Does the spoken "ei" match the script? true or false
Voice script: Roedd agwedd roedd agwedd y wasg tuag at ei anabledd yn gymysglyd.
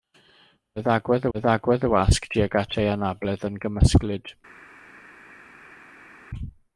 true